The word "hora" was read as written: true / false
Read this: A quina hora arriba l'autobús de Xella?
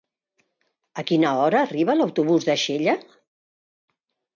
true